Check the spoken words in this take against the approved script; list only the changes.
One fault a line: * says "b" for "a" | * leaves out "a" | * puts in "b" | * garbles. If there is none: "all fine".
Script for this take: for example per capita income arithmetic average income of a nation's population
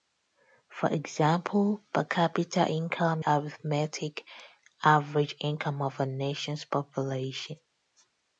all fine